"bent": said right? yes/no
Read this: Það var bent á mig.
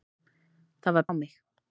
no